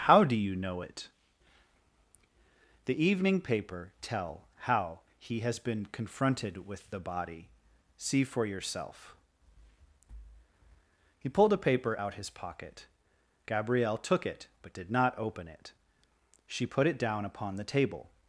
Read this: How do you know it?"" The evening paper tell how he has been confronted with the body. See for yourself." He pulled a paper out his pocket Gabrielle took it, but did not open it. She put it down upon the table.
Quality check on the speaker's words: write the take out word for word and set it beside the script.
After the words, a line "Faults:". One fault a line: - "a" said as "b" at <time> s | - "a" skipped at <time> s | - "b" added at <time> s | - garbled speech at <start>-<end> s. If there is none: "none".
How do you know it?"" The evening paper tell how he has been confronted with the body. See for yourself." He pulled a paper out his pocket Gabrielle took it, but did not open it. She put it down upon the table.
Faults:
none